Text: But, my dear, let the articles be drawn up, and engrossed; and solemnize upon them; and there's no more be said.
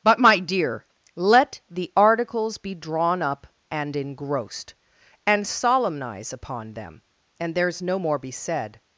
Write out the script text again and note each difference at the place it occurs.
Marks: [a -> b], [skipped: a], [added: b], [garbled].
But, my dear, let the articles be drawn up, and engrossed; and solemnize upon them; and there's no more be said.